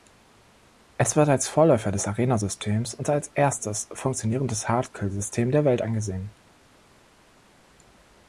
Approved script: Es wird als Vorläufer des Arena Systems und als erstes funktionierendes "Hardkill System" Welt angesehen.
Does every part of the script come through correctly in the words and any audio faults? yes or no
no